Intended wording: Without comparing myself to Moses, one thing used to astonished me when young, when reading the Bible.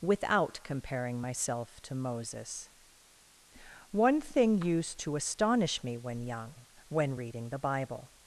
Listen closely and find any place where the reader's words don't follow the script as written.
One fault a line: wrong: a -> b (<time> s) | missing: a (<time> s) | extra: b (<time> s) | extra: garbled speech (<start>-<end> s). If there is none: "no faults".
wrong: astonished -> astonish (5.2 s)